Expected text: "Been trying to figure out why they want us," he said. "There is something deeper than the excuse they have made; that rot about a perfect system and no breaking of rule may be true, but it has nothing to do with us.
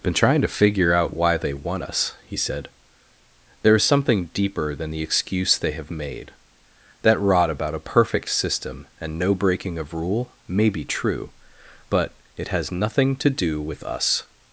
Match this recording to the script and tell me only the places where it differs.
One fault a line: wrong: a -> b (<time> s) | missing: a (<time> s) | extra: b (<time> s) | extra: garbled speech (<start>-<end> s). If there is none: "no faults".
no faults